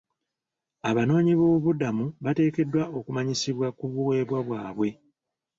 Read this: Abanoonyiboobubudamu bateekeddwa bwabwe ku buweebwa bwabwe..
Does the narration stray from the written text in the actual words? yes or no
yes